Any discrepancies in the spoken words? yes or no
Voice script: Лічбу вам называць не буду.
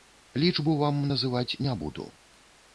no